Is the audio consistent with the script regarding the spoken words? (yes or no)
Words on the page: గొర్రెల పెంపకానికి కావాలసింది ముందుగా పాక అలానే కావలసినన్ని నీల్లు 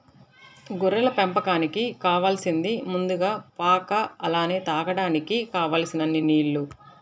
no